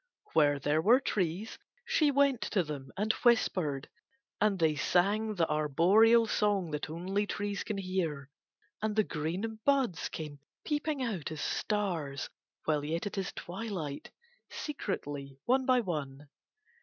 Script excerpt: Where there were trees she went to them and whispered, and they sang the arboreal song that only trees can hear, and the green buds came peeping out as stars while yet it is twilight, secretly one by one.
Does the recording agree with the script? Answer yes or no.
yes